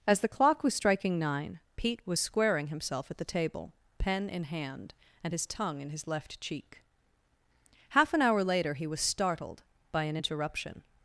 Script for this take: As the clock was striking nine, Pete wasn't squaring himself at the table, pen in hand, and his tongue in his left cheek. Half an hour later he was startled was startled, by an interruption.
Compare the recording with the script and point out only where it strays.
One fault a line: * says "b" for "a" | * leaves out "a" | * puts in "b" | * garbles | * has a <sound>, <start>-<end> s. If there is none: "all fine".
* says "was" for "wasn't"
* leaves out "was startled"